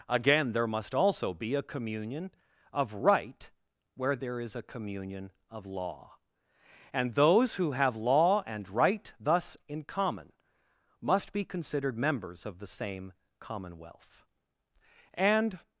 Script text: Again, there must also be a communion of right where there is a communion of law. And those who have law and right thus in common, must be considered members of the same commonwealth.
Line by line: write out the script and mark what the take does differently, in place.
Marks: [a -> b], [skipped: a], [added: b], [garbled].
Again, there must also be a communion of right where there is a communion of law. And those who have law and right thus in common, must be considered members of the same commonwealth. [added: And]